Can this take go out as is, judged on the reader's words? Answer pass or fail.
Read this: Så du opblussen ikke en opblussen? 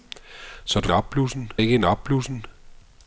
pass